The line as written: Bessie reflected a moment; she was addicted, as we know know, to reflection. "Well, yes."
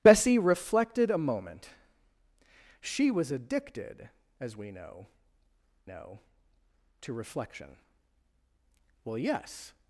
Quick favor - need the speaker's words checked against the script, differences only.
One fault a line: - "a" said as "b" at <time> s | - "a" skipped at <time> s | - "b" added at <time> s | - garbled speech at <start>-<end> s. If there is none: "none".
none